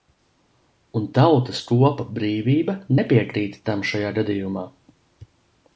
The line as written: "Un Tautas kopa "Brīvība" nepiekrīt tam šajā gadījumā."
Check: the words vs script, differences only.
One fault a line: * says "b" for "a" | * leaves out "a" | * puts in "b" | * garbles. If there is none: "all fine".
all fine